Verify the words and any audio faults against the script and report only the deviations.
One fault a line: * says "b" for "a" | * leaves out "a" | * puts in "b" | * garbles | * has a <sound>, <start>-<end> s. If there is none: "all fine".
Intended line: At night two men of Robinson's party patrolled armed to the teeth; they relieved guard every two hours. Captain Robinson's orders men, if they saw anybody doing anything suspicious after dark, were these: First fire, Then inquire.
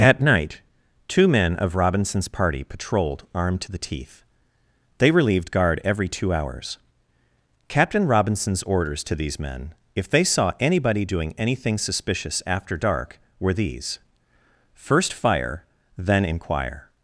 * puts in "to these"